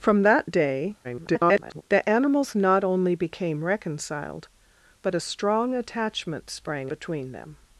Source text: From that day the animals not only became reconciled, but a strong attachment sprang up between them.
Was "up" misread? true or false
true